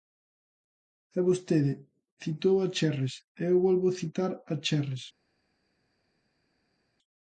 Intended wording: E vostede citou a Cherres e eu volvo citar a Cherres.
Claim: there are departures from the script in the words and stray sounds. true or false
false